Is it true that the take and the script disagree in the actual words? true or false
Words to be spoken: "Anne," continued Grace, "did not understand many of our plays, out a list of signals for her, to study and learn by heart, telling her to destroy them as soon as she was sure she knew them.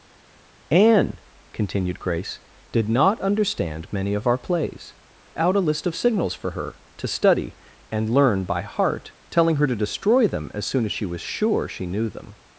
false